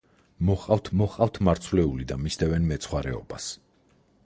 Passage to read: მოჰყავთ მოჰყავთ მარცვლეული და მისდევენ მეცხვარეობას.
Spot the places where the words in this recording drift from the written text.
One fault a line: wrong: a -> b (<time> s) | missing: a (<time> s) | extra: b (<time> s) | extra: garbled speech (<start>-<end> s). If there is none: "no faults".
no faults